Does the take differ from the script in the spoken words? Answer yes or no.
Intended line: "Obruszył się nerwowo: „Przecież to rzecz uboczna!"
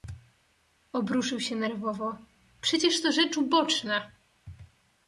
no